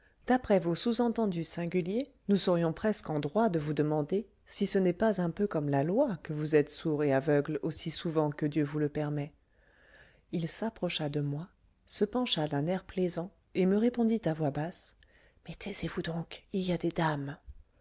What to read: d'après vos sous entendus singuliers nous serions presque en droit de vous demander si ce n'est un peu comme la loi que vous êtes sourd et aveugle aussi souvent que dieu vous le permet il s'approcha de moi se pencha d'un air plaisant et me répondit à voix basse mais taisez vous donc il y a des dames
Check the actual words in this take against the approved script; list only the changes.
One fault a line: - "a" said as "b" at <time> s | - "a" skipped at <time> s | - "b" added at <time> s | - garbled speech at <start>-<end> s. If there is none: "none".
- "pas" added at 4.9 s